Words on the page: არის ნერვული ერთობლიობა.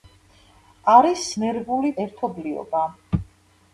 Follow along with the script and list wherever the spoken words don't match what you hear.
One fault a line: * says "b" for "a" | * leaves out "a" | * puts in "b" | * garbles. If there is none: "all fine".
all fine